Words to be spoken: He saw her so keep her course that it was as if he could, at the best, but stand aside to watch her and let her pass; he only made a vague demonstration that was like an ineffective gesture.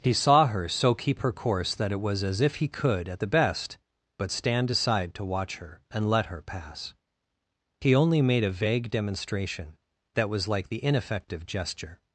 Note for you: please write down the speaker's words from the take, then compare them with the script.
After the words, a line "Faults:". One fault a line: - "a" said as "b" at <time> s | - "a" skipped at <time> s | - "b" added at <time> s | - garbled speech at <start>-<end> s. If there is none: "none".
He saw her so keep her course that it was as if he could, at the best, but stand aside to watch her and let her pass; he only made a vague demonstration that was like the ineffective gesture.
Faults:
- "an" said as "the" at 10.7 s